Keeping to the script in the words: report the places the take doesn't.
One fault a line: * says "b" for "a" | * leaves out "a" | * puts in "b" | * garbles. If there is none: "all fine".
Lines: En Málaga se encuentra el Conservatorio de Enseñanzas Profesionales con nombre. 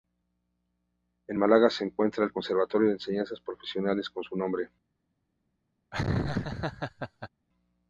* puts in "su"